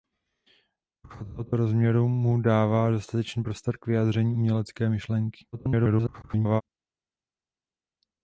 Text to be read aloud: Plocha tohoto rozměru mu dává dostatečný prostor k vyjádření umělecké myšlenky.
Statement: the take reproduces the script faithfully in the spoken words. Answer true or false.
false